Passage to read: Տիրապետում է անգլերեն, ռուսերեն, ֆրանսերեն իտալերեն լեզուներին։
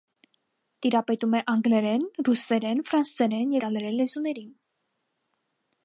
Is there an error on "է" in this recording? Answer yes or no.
no